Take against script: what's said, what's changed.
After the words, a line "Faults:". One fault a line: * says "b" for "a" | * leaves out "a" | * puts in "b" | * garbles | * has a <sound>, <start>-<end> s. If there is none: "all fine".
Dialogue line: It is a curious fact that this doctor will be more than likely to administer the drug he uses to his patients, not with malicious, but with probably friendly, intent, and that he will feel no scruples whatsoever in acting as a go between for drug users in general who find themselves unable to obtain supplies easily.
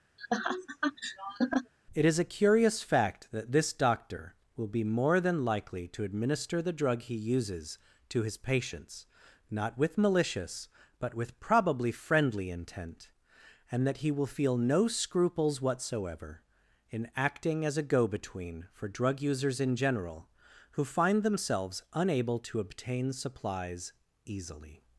It is a curious fact that this doctor will be more than likely to administer the drug he uses to his patients, not with malicious, but with probably friendly, intent, and that he will feel no scruples whatsoever in acting as a go between for drug users in general who find themselves unable to obtain supplies easily.
Faults:
* has a laugh, 0.2-1.7 s